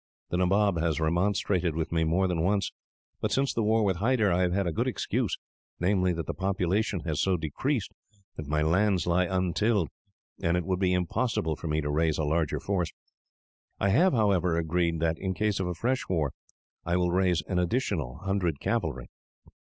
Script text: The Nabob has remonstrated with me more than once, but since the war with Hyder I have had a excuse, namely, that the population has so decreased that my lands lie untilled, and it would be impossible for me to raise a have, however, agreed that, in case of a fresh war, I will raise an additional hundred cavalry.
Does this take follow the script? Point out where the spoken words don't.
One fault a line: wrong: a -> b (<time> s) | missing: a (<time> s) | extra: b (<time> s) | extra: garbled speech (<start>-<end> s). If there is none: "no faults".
extra: good (4.7 s)
extra: larger force I (12.2 s)